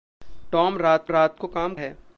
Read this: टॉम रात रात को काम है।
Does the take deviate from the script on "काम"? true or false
false